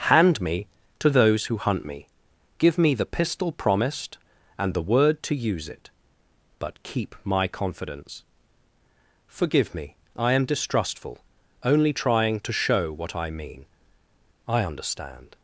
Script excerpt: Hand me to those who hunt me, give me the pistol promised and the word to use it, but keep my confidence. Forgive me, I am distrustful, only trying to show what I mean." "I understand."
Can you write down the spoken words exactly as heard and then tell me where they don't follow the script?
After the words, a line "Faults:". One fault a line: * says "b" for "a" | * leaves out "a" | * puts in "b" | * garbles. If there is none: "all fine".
Hand me to those who hunt me, give me the pistol promised and the word to use it, but keep my confidence. Forgive me, I am distrustful, only trying to show what I mean." "I understand."
Faults:
all fine